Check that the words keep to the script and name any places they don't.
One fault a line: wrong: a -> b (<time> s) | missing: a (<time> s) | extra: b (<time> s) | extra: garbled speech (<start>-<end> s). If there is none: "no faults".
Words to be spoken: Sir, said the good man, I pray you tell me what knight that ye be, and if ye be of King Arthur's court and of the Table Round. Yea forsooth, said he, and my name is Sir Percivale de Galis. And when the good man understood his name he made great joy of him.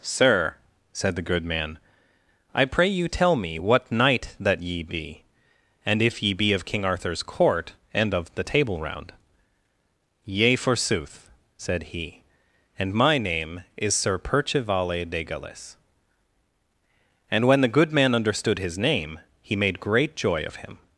no faults